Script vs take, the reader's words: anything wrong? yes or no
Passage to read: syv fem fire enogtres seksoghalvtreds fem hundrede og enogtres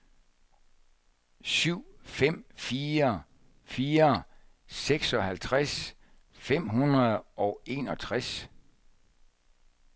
yes